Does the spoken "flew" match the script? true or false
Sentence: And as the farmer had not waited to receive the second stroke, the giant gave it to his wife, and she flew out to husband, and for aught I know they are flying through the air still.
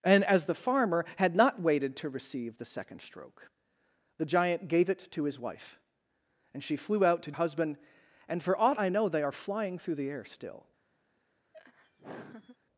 true